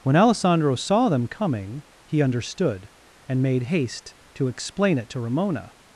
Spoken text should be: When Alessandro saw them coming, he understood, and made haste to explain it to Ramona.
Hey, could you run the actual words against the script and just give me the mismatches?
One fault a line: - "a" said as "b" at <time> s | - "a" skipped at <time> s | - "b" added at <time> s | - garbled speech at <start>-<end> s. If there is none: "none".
none